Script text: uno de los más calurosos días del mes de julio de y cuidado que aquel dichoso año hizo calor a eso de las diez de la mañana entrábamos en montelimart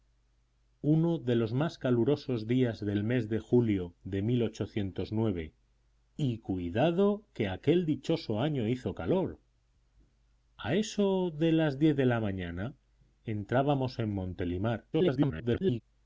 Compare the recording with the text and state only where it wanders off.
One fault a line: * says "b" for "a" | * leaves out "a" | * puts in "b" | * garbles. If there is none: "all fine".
* garbles